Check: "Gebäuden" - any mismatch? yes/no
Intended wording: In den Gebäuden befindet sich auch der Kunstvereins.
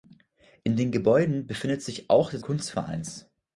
no